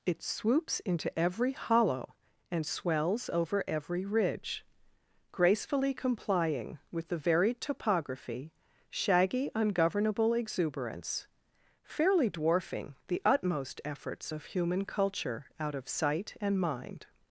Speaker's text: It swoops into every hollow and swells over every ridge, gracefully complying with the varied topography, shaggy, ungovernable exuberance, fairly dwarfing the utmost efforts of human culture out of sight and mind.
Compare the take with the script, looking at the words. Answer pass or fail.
pass